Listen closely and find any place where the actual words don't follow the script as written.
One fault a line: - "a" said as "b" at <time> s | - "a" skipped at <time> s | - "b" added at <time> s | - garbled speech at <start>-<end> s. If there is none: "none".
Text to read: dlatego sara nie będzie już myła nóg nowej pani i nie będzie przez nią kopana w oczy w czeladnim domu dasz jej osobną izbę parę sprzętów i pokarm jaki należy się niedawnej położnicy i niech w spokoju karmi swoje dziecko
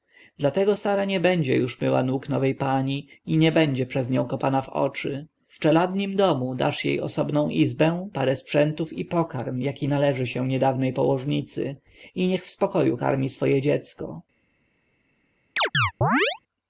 none